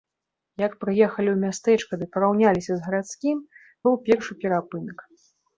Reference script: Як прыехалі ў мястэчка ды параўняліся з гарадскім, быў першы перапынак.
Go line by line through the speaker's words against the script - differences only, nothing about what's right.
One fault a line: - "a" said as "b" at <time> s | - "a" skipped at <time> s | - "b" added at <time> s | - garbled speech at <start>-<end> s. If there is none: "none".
none